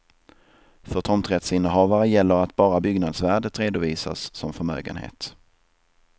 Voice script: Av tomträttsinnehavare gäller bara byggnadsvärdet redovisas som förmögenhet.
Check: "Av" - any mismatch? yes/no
yes